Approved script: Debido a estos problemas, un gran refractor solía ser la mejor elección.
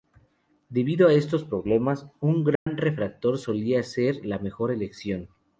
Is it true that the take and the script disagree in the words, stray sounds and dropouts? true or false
true